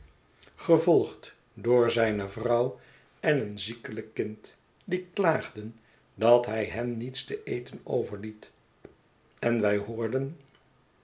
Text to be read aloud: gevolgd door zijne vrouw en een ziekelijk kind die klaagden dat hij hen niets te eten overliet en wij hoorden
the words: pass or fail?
pass